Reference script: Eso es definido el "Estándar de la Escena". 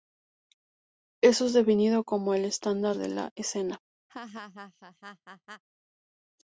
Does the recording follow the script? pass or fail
fail